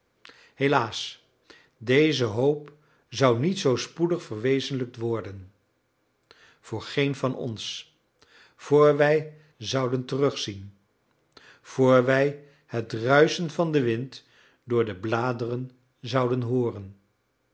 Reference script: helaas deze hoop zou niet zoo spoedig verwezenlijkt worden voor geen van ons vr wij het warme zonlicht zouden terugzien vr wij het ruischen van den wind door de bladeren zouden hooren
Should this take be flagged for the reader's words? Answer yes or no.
yes